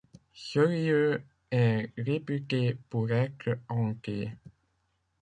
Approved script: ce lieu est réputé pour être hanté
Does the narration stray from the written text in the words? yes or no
no